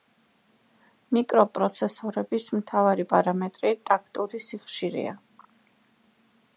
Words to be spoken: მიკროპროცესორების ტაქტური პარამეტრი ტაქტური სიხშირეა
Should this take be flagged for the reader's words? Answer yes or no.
yes